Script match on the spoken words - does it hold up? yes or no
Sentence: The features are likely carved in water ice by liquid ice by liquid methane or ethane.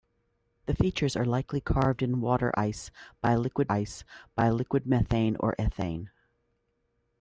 yes